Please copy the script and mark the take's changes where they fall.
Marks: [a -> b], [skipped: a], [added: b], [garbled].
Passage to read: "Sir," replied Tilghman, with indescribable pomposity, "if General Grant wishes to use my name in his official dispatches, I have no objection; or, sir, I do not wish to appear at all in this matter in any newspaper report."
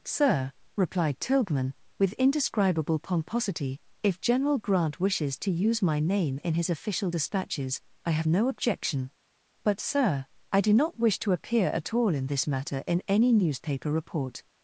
"Sir," replied Tilghman, with indescribable pomposity, "if General Grant wishes to use my name in his official dispatches, I have no objection; [or, -> but] sir, I do not wish to appear at all in this matter in any newspaper report."